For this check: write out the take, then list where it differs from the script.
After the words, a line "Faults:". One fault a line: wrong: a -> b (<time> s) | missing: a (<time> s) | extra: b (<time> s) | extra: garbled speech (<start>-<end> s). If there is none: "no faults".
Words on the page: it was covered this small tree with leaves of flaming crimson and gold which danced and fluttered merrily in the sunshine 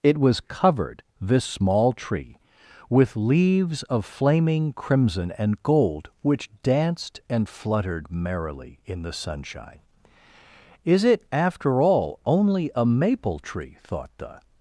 it was covered this small tree with leaves of flaming crimson and gold which danced and fluttered merrily in the sunshine is it after all only a maple tree thought the
Faults:
extra: is it after all only a maple tree thought the (10.8 s)